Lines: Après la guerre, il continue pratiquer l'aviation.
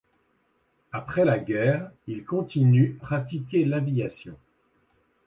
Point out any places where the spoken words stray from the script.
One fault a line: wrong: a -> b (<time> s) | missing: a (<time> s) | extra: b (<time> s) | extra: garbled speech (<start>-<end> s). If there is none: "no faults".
no faults